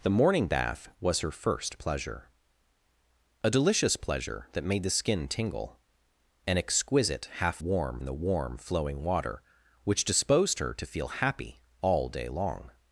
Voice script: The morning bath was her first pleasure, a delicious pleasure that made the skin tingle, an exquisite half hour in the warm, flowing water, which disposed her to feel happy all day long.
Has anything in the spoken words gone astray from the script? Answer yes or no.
yes